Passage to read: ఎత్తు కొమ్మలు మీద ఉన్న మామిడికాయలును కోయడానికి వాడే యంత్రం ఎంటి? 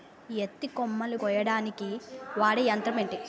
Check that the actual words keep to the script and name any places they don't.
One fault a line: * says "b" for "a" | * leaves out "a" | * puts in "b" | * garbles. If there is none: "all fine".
* leaves out "మీద ఉన్న మామిడికాయలును"